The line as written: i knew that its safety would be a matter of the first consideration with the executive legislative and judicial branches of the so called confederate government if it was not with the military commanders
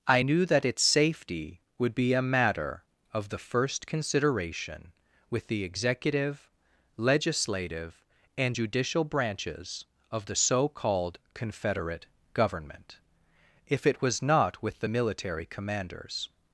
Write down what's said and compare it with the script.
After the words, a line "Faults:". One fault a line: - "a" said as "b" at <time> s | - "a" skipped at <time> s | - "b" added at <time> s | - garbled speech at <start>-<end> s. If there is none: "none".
i knew that its safety would be a matter of the first consideration with the executive legislative and judicial branches of the so called confederate government if it was not with the military commanders
Faults:
none